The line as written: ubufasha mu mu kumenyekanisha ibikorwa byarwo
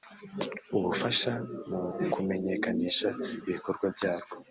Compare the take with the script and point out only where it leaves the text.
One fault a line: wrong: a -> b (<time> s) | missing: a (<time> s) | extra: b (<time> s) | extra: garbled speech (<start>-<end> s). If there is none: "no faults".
missing: mu (1.8 s)